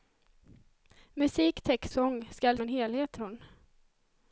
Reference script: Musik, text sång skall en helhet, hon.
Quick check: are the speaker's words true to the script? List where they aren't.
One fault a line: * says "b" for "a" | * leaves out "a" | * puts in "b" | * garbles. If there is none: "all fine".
all fine